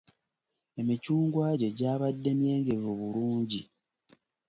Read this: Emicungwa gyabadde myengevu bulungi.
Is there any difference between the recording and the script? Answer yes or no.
yes